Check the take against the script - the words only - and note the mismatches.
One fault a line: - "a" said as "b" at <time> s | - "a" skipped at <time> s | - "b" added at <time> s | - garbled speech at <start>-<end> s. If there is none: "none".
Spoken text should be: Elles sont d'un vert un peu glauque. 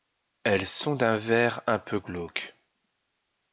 none